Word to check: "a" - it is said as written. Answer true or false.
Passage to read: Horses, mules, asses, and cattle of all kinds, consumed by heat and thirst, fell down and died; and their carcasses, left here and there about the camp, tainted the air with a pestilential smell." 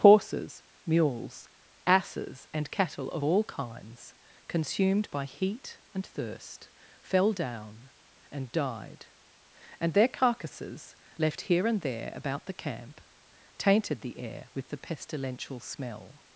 false